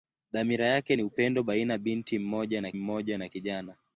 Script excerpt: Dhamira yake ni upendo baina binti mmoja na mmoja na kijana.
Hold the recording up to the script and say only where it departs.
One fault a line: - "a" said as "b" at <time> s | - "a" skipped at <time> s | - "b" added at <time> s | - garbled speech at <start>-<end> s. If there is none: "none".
none